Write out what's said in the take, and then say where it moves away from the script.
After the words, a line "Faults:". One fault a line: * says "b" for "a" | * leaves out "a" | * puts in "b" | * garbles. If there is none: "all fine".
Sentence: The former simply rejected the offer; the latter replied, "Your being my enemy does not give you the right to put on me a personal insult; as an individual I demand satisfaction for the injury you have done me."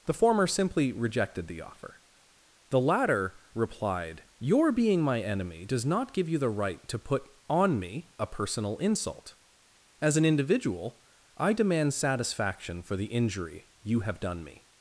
The former simply rejected the offer; the latter replied, "Your being my enemy does not give you the right to put on me a personal insult; as an individual I demand satisfaction for the injury you have done me."
Faults:
all fine